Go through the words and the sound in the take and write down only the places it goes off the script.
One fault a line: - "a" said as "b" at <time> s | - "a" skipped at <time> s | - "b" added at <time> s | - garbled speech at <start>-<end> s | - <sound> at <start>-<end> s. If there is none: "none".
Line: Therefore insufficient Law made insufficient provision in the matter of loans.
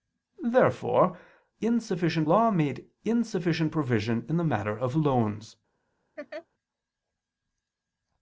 - laugh at 6.2-6.5 s